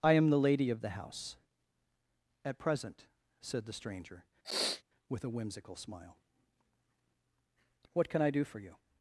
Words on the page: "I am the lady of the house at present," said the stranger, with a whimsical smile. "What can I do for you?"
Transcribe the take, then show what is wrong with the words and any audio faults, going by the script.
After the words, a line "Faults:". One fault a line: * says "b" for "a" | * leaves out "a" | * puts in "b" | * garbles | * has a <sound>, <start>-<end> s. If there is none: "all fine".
"I am the lady of the house at present," said the stranger, with a whimsical smile. "What can I do for you?"
Faults:
* has a sniff, 4.4-4.8 s